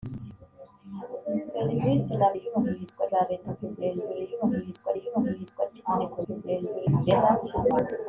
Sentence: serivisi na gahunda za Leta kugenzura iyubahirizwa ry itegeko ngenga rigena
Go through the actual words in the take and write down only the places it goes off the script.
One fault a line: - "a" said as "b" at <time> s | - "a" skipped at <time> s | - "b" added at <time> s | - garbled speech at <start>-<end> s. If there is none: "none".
- "gahunda" said as "iyubahirizwa" at 2.4 s
- "iyubahirizwa" added at 5.0 s
- "ngenga" said as "kugenzura" at 6.2 s